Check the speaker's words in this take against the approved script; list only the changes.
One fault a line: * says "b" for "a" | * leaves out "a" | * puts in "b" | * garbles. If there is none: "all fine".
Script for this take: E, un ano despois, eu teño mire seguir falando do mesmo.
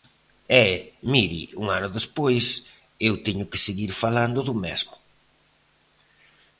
* puts in "mire"
* says "que" for "mire"